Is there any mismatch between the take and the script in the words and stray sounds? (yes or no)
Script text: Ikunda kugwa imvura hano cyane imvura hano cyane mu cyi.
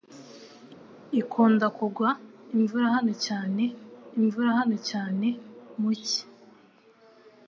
no